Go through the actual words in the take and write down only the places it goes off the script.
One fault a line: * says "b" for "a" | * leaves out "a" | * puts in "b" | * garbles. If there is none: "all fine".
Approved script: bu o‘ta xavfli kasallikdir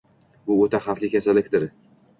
all fine